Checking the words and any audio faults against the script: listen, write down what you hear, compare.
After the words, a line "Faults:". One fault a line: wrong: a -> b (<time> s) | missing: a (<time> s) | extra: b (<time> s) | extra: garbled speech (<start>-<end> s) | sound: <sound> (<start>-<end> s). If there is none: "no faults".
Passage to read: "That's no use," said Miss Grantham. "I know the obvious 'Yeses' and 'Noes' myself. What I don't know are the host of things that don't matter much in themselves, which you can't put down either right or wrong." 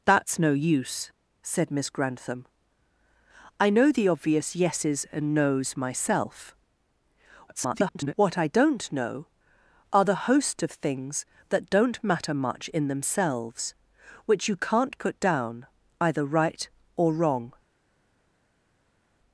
"That's no use," said Miss Grantham. "I know the obvious 'Yeses' and 'Noes' myself. [garbled] What I don't know are the host of things that don't matter much in themselves, which you can't put down either right or wrong."
Faults:
extra: garbled speech (7.5-8.1 s)